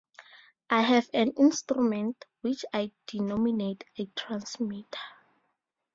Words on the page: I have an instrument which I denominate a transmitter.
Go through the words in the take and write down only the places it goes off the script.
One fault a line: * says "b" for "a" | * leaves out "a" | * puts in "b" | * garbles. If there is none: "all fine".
all fine